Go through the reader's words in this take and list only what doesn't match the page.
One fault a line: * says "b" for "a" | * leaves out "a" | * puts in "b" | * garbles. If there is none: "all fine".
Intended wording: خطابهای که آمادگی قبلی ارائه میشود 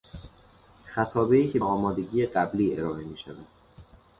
all fine